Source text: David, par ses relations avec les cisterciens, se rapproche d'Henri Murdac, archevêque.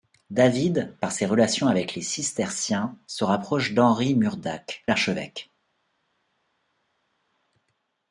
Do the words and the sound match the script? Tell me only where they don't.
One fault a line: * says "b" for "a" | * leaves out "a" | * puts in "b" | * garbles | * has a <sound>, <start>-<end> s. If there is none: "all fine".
all fine